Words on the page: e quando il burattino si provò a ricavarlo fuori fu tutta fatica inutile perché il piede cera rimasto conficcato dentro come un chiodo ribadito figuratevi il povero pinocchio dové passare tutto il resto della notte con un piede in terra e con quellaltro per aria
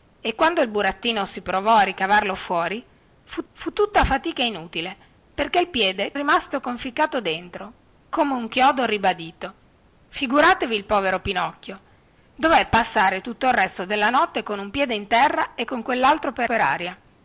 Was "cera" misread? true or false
true